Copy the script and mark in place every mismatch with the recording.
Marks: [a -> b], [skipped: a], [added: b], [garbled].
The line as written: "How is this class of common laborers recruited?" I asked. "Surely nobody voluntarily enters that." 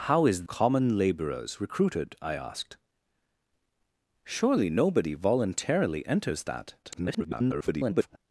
"How is [skipped: this class of] common laborers recruited?" I asked. "Surely nobody voluntarily enters that." [garbled]